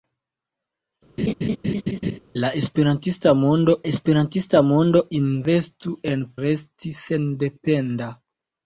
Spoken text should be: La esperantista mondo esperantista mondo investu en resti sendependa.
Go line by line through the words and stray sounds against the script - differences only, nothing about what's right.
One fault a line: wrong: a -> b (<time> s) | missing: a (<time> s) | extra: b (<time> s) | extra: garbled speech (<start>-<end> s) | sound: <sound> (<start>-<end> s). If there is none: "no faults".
sound: laugh (1.2-2.2 s)